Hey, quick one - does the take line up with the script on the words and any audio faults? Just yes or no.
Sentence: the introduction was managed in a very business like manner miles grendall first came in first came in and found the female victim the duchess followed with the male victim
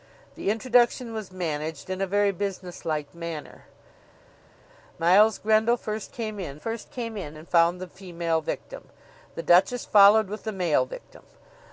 yes